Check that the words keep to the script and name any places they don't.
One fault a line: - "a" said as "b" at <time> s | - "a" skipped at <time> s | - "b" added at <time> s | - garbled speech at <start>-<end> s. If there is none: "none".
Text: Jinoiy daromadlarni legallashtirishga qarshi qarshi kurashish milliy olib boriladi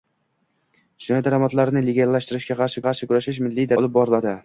none